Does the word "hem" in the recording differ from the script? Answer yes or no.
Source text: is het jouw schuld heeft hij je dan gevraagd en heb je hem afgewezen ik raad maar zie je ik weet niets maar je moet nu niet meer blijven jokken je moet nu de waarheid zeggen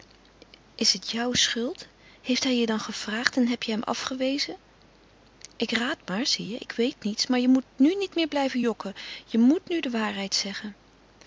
no